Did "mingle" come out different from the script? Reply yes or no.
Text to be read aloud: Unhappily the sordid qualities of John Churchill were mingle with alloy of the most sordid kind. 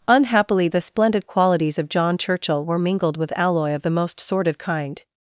yes